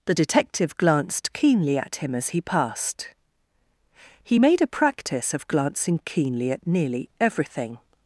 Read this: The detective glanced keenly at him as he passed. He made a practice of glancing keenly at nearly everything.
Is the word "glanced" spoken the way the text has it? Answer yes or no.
yes